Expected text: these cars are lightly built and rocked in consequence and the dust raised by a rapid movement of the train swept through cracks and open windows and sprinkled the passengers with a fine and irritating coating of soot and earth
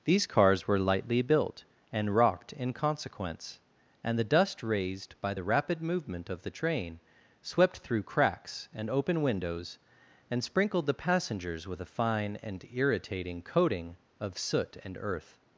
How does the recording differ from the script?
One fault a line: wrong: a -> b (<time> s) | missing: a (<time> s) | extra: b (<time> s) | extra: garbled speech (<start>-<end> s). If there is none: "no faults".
wrong: are -> were (0.7 s)
wrong: a -> the (5.3 s)